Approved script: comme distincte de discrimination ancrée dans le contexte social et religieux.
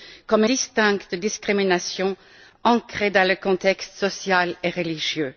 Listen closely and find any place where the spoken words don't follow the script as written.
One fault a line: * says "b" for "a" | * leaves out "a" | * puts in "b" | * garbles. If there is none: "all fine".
all fine